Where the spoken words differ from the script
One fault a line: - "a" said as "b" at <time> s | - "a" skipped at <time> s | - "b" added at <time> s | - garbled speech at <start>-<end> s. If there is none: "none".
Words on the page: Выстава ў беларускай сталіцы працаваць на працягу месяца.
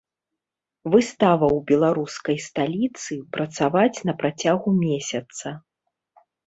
none